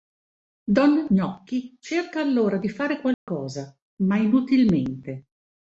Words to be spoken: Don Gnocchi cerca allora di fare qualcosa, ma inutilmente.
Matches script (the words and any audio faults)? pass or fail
fail